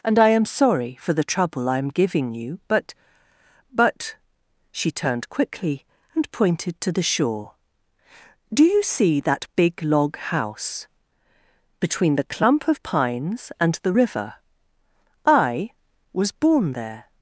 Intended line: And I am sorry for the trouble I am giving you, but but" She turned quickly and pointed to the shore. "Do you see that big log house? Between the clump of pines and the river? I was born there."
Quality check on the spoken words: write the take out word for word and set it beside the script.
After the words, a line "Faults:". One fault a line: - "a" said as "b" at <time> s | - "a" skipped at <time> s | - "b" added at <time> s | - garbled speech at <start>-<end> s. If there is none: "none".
And I am sorry for the trouble I am giving you, but but" She turned quickly and pointed to the shore. "Do you see that big log house? Between the clump of pines and the river? I was born there."
Faults:
none